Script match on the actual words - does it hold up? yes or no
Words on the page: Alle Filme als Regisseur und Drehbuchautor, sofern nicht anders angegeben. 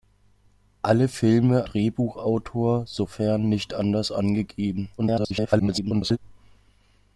no